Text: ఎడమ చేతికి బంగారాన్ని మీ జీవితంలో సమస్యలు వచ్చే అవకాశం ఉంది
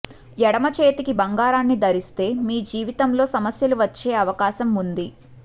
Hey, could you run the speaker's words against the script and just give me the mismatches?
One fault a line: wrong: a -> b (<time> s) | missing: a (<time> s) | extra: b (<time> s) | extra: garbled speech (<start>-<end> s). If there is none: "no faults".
extra: ధరిస్తే (1.8 s)